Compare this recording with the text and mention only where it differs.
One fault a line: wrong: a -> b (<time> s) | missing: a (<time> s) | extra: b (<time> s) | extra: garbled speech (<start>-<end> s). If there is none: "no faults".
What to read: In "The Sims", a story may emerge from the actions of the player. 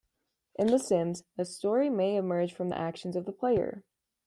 no faults